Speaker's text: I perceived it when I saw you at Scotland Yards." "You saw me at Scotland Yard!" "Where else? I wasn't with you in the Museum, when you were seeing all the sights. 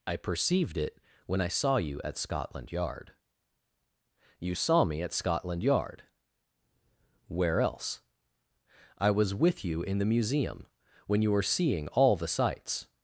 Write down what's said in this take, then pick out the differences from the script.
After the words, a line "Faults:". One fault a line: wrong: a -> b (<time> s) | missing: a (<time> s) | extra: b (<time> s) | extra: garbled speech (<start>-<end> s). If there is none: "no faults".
I perceived it when I saw you at Scotland Yard." "You saw me at Scotland Yard!" "Where else? I was with you in the Museum, when you were seeing all the sights.
Faults:
wrong: Yards -> Yard (2.7 s)
wrong: wasn't -> was (9.1 s)